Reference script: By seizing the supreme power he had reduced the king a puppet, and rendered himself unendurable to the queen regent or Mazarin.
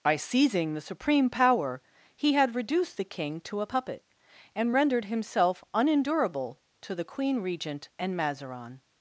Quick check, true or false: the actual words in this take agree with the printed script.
false